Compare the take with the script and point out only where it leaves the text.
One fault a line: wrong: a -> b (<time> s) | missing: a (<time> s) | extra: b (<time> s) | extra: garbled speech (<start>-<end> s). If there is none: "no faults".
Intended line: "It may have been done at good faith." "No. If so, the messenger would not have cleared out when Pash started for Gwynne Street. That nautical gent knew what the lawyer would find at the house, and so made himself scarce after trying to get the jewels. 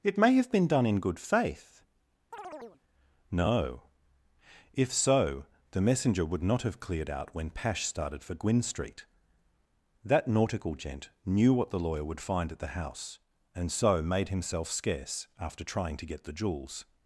wrong: at -> in (0.9 s)